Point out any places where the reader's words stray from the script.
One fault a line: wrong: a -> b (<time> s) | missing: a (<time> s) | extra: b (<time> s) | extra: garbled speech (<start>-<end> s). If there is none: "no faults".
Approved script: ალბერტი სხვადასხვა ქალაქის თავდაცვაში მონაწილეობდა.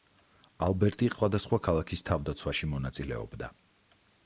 no faults